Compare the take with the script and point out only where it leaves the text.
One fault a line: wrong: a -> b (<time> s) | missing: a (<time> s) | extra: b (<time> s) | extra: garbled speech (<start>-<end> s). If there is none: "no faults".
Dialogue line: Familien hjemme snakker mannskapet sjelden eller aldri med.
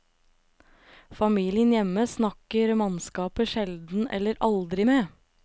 no faults